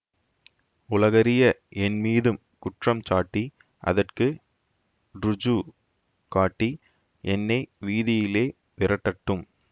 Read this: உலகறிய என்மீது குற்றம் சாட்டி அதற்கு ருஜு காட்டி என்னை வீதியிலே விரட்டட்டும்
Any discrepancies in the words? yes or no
no